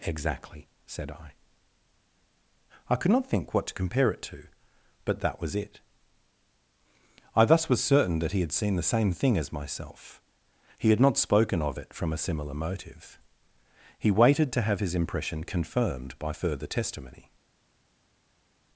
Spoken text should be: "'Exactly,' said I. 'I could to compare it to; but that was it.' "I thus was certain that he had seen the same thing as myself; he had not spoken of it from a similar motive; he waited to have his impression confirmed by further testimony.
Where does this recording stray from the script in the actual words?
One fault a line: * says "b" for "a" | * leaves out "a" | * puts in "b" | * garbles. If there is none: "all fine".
* puts in "not think what"